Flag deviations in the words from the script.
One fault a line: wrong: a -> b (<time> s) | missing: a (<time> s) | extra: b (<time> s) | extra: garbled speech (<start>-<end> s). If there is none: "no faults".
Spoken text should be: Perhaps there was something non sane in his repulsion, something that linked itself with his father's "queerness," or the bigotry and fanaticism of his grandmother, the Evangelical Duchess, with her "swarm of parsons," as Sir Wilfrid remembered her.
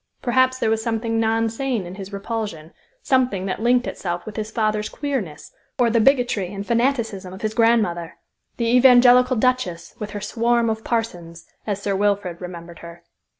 no faults